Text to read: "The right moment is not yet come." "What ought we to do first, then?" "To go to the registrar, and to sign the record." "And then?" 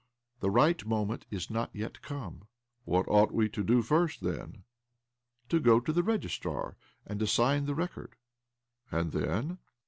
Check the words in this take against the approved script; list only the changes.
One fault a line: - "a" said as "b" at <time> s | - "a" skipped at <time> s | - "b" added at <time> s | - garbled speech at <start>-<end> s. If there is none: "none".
none